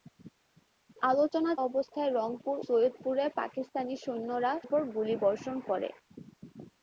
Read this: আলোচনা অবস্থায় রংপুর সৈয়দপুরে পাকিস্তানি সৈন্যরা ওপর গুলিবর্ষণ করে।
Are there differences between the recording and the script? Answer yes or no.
no